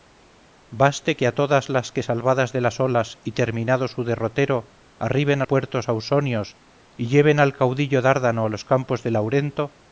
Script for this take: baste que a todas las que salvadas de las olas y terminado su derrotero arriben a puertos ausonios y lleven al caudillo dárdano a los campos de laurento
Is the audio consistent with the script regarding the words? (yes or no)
yes